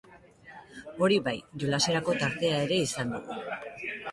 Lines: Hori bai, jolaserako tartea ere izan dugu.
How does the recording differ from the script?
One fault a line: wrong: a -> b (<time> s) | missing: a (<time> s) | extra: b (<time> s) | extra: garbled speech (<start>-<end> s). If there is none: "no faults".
no faults